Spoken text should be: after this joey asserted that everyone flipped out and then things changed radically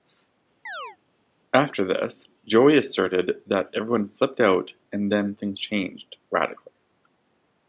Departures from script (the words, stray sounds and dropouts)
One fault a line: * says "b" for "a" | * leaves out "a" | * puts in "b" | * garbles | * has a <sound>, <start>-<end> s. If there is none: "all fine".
* has a chirp, 0.7-1.0 s